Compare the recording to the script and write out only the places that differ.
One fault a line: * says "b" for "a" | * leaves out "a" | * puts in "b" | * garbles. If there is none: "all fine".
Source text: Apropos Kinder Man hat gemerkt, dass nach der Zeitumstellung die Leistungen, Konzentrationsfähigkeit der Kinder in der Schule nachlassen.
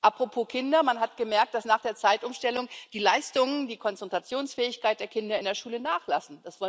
* puts in "die"